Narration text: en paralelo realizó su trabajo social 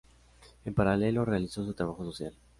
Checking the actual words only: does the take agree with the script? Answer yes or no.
yes